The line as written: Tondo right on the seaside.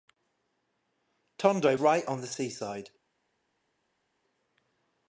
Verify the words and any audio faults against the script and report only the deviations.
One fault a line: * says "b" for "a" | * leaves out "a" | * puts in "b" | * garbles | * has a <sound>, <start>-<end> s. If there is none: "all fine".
all fine